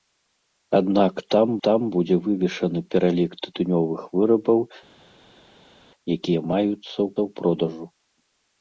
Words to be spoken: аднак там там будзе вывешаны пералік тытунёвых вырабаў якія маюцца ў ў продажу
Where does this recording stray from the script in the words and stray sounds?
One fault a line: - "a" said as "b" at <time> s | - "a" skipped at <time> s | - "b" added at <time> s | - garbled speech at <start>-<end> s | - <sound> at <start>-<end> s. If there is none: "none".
none